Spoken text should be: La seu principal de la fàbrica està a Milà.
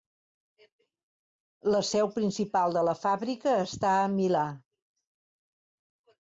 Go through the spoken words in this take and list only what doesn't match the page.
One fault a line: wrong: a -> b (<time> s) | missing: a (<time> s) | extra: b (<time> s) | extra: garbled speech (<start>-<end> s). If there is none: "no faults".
no faults